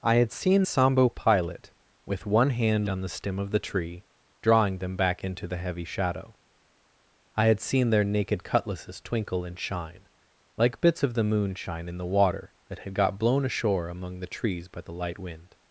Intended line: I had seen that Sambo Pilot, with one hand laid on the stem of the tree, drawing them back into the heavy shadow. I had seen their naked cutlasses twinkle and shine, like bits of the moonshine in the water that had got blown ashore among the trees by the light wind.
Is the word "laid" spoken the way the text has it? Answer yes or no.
no